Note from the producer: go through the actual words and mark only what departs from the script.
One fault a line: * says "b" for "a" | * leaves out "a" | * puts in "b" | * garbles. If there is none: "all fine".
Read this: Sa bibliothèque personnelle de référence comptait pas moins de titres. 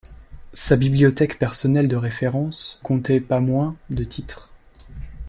all fine